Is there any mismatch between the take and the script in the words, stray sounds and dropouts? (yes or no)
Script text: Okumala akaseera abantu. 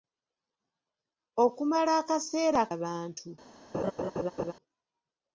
yes